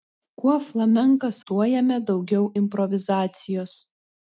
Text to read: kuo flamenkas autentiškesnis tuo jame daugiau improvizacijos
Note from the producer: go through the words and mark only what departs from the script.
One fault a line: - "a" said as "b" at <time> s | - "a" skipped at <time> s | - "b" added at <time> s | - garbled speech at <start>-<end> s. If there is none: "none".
- "autentiškesnis" skipped at 1.4 s